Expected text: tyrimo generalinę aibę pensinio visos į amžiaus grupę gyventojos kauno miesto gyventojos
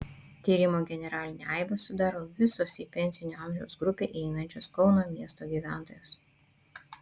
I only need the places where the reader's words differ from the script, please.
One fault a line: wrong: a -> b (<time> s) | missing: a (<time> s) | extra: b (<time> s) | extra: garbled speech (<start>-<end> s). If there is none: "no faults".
wrong: pensinio -> sudaro (1.8 s)
extra: pensinio (3.0 s)
wrong: gyventojos -> įeinančios (4.2 s)